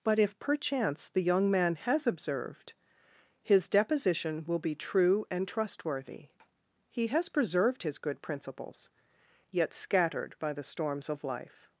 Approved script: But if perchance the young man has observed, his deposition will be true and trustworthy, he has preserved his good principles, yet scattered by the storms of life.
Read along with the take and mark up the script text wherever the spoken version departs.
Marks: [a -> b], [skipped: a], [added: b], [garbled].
But if perchance the young man has observed, his deposition will be true and trustworthy, he has preserved his good principles, yet scattered by the storms of life.